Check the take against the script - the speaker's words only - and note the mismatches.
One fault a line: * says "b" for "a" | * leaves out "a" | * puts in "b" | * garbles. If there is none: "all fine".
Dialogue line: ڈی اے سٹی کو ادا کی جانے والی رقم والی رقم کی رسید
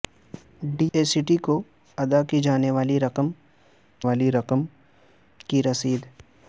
all fine